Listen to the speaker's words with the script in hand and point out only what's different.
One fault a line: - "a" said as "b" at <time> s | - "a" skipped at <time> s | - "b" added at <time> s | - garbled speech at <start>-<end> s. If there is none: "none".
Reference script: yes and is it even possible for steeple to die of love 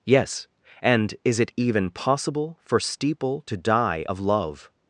none